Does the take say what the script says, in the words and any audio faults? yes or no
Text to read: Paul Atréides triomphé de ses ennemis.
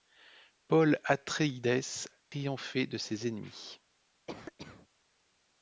no